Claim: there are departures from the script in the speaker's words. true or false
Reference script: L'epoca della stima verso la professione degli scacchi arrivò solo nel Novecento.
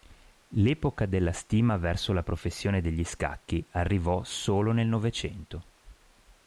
false